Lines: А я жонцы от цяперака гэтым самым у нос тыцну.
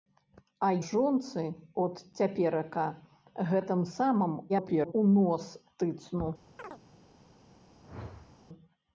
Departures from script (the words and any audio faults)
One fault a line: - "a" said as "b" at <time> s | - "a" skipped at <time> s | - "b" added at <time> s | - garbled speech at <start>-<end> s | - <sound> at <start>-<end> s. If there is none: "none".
- "я" skipped at 0.7 s
- garbled speech at 4.5-4.9 s
- chirp at 6.6-6.8 s
- whoosh at 7.8-8.4 s